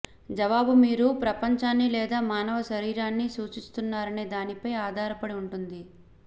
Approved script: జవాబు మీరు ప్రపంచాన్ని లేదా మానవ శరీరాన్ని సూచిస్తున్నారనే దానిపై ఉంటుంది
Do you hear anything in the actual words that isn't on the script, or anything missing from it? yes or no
yes